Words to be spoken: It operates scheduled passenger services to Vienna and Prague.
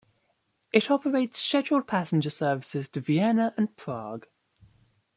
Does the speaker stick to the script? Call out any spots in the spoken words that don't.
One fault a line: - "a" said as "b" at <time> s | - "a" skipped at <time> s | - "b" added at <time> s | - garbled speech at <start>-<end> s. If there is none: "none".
none